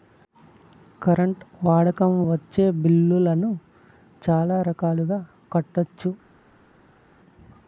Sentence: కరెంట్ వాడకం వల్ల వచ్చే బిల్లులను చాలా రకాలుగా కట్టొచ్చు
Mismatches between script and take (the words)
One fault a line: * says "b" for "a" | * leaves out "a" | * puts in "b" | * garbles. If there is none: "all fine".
* leaves out "వల్ల"